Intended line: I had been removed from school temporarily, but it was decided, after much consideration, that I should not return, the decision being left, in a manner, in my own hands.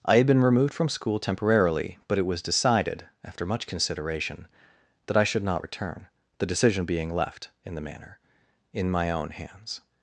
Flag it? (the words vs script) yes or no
yes